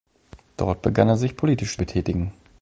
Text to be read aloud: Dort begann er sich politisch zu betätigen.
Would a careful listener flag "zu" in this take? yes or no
yes